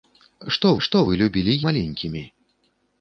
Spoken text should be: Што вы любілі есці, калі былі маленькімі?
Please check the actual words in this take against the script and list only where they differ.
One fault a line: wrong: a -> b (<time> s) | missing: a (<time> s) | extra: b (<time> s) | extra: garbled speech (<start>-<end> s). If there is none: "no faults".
extra: што (0.9 s)
missing: есці калі былі (1.6 s)